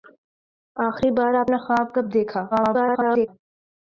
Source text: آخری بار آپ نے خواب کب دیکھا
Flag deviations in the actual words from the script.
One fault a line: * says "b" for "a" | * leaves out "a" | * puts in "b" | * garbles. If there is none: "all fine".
* garbles